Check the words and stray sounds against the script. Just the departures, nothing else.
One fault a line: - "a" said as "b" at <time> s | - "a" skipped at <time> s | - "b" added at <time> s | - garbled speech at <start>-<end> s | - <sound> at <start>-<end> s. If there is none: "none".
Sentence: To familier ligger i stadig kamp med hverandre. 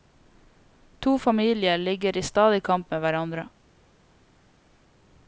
none